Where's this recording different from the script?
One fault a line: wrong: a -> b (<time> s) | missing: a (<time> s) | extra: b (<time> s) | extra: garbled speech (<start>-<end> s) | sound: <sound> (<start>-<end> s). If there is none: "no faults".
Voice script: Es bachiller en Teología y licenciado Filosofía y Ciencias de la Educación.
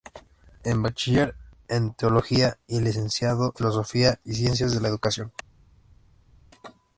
no faults